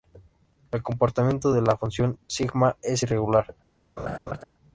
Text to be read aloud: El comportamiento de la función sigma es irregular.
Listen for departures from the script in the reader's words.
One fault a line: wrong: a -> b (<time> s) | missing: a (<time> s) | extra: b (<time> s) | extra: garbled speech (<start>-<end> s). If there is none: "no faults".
no faults